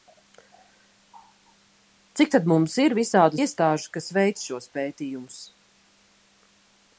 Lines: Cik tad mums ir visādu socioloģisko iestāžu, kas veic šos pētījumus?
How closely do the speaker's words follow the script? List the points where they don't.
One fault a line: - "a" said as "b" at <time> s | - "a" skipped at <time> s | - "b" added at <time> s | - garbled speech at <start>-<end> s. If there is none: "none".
- "socioloģisko" skipped at 3.4 s